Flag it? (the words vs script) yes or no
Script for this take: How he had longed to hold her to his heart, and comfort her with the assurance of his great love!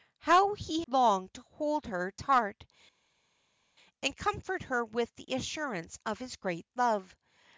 yes